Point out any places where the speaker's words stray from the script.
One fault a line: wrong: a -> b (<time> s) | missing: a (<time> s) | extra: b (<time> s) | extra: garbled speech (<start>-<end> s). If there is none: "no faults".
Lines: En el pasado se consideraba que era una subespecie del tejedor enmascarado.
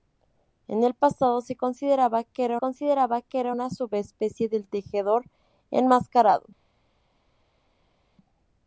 extra: consideraba que era (2.6 s)